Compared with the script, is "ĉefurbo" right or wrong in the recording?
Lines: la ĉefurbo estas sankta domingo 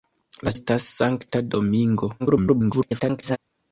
wrong